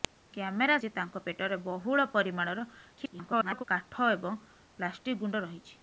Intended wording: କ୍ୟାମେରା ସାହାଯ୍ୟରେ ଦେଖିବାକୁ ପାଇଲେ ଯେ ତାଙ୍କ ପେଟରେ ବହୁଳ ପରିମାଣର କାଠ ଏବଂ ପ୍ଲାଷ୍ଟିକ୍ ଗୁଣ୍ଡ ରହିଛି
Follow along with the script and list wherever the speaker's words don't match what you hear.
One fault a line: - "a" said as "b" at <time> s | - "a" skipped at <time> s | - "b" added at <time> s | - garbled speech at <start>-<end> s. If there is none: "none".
- "ସାହାଯ୍ୟରେ ଦେଖିବାକୁ ପାଇଲେ" skipped at 0.8 s
- garbled speech at 3.0-3.6 s